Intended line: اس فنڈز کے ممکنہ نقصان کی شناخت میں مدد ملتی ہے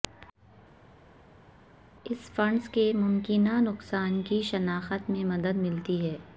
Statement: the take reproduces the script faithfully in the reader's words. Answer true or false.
true